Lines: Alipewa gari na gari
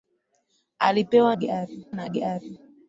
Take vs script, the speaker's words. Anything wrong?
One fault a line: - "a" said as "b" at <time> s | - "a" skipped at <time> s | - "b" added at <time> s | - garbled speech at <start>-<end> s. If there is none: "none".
none